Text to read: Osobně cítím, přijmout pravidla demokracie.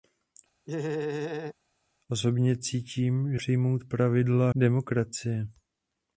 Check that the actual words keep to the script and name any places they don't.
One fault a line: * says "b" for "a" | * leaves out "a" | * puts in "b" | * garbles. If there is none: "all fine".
all fine